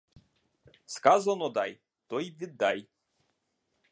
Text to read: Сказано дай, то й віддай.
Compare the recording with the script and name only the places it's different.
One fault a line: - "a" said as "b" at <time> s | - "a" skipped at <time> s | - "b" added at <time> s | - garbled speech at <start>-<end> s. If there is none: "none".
none